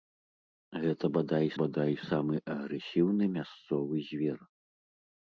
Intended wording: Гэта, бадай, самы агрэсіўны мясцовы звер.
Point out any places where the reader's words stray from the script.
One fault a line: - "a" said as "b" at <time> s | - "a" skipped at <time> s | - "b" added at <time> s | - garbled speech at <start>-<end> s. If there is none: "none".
- "бадай" added at 1.6 s